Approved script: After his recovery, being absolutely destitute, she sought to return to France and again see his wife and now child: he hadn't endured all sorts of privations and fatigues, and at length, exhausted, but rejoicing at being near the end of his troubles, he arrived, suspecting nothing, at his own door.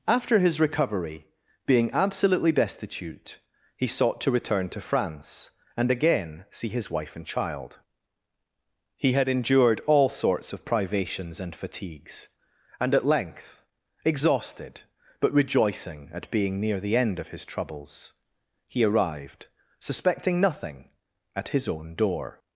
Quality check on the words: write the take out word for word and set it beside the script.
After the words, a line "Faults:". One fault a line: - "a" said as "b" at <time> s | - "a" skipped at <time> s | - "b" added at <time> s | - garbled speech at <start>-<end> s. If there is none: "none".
After his recovery, being absolutely destitute, he sought to return to France and again see his wife and child: he had endured all sorts of privations and fatigues, and at length, exhausted, but rejoicing at being near the end of his troubles, he arrived, suspecting nothing, at his own door.
Faults:
- "she" said as "he" at 3.8 s
- "now" skipped at 7.2 s
- "hadn't" said as "had" at 9.1 s